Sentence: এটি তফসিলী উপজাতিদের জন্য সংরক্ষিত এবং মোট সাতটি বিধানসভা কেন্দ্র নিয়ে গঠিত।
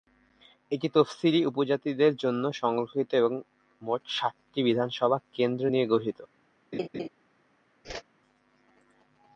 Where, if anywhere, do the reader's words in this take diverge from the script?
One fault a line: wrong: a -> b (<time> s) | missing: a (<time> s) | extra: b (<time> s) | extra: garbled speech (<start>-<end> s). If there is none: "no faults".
no faults